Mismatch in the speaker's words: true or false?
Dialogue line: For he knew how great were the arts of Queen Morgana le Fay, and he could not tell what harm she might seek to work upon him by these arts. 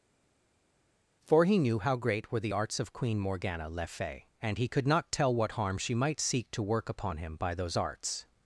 true